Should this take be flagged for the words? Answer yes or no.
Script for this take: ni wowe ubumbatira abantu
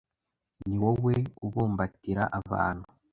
no